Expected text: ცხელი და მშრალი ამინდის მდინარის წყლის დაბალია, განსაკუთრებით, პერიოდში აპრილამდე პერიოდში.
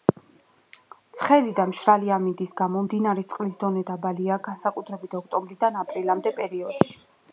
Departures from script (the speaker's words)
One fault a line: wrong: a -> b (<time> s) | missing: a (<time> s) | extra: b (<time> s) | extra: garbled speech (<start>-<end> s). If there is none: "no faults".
extra: გამო (2.6 s)
extra: დონე (3.7 s)
wrong: პერიოდში -> ოქტომბრიდან (5.2 s)